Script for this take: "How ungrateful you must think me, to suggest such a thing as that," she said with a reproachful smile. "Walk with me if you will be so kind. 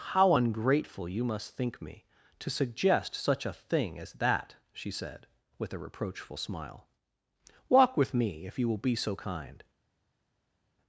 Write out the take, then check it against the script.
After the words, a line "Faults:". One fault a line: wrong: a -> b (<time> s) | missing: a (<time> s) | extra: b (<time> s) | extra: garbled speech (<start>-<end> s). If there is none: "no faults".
"How ungrateful you must think me, to suggest such a thing as that," she said with a reproachful smile. "Walk with me if you will be so kind.
Faults:
no faults